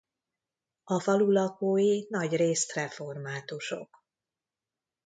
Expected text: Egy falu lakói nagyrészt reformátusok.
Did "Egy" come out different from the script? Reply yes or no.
yes